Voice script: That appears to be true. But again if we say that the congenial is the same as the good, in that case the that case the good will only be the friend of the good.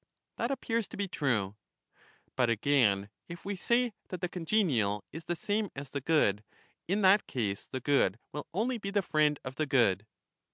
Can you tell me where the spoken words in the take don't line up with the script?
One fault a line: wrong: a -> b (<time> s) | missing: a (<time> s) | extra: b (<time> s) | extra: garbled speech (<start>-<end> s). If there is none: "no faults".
missing: that case the (7.8 s)